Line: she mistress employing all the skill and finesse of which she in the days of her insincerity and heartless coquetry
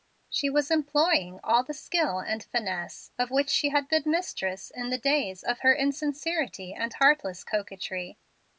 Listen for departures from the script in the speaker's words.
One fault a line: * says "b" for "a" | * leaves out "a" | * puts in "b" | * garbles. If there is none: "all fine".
* says "was" for "mistress"
* puts in "had been mistress"